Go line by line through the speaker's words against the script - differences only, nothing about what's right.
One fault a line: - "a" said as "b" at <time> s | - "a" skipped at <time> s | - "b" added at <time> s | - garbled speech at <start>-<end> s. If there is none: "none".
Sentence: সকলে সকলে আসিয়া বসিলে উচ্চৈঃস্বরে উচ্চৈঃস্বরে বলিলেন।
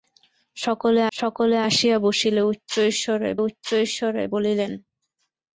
none